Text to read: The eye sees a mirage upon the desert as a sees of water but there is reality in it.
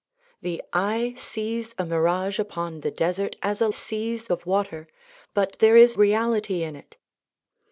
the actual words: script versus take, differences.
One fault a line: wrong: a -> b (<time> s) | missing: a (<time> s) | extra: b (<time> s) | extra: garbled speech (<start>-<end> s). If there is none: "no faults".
no faults